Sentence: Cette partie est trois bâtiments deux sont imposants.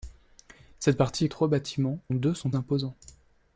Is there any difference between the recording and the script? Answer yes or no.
no